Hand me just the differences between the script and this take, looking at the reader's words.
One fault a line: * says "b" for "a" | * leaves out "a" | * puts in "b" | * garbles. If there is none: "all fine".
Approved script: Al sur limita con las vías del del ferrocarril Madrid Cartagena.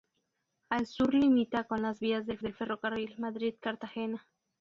all fine